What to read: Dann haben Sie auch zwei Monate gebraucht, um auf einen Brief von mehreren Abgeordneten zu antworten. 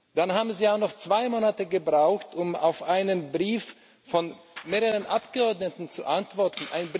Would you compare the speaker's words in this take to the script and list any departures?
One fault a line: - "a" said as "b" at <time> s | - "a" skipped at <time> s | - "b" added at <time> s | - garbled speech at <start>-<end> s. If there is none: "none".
- "noch" added at 0.8 s